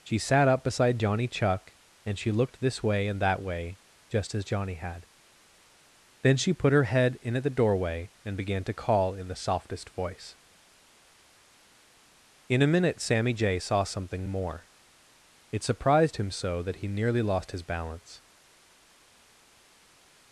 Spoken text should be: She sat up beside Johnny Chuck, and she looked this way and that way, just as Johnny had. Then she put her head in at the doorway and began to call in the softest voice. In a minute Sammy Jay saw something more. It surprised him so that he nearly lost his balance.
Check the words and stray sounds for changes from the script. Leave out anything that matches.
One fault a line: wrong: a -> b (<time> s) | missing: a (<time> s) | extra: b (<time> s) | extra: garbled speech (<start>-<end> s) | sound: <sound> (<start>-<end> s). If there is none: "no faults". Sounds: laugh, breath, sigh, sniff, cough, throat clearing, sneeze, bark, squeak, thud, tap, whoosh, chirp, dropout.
no faults